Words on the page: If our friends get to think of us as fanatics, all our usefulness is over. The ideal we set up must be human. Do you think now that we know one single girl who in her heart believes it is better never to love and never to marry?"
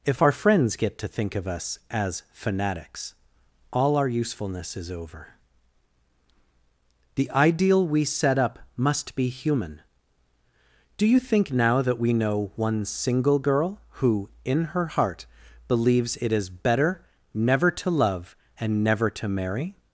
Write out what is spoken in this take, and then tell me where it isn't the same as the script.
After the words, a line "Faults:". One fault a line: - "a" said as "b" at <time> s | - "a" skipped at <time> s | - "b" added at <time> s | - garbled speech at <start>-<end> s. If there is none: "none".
If our friends get to think of us as fanatics, all our usefulness is over. The ideal we set up must be human. Do you think now that we know one single girl who in her heart believes it is better never to love and never to marry?"
Faults:
none